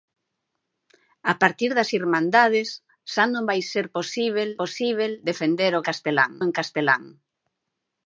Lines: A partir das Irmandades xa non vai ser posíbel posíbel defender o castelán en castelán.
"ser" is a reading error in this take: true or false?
false